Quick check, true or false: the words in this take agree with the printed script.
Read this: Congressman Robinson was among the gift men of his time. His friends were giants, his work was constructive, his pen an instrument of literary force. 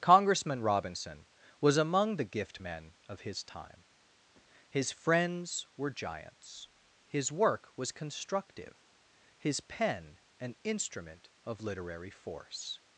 true